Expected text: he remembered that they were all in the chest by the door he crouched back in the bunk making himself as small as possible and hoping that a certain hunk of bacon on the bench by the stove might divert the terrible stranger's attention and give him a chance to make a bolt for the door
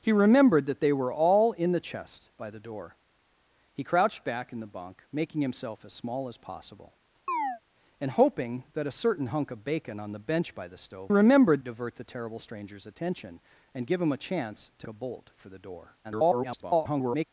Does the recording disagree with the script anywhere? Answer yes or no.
yes